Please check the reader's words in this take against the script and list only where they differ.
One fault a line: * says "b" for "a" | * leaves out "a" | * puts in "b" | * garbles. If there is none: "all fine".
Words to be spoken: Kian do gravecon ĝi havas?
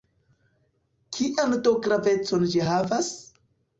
all fine